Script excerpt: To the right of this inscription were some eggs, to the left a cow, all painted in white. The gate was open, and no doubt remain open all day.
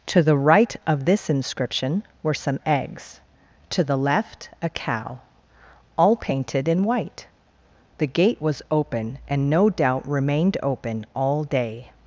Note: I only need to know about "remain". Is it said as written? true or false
false